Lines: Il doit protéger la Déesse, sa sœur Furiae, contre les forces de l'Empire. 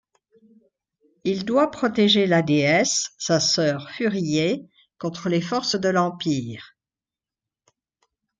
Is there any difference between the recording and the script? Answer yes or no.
no